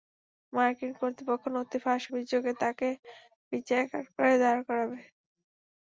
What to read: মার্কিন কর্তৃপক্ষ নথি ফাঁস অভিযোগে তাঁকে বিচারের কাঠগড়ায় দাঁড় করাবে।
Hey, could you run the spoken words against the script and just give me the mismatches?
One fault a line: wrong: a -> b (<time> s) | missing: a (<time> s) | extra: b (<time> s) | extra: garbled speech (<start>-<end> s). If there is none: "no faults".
no faults